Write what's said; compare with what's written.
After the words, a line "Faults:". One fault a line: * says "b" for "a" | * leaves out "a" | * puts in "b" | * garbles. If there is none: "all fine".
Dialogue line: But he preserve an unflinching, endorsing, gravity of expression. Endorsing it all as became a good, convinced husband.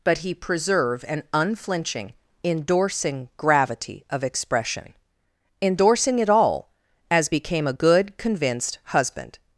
But he preserve an unflinching, endorsing, gravity of expression. Endorsing it all as became a good, convinced husband.
Faults:
all fine